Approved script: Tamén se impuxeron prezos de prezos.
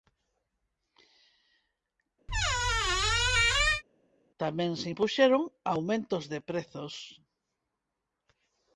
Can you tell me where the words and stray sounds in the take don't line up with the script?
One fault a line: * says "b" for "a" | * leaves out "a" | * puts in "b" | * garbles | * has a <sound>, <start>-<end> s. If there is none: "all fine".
* has a squeak, 2.3-3.8 s
* says "aumentos" for "prezos"